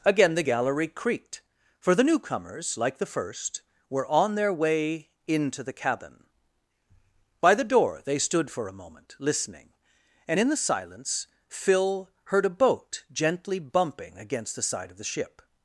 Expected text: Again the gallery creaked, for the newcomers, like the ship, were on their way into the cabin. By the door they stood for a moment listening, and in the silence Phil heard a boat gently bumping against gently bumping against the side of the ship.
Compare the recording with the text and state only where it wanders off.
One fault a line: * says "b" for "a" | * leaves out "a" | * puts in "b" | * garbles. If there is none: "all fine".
* says "first" for "ship"
* leaves out "gently bumping against"